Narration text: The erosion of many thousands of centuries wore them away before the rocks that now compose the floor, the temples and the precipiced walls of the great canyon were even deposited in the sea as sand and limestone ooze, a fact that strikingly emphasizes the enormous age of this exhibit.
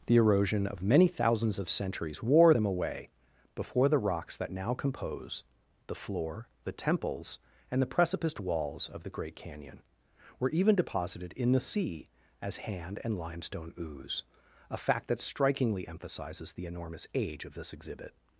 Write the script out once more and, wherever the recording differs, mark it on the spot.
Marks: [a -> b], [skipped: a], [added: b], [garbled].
The erosion of many thousands of centuries wore them away before the rocks that now compose the floor, the temples and the precipiced walls of the great canyon were even deposited in the sea as [sand -> hand] and limestone ooze, a fact that strikingly emphasizes the enormous age of this exhibit.